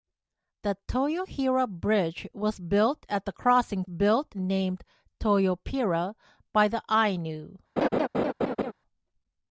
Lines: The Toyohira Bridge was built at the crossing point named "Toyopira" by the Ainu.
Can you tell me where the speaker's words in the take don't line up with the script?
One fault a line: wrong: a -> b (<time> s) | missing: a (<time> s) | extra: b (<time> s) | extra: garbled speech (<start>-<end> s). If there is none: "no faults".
wrong: point -> built (3.9 s)